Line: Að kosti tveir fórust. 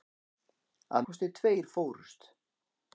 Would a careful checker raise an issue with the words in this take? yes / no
no